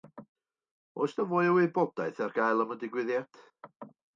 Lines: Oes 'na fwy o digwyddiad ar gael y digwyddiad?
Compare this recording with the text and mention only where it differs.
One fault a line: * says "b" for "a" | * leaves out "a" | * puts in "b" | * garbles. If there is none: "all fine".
* says "wybodaeth" for "digwyddiad"
* puts in "am"